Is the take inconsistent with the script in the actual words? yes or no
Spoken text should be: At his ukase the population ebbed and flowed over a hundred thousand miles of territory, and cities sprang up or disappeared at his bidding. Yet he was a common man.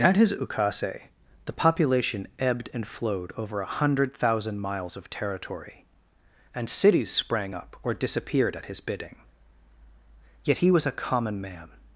no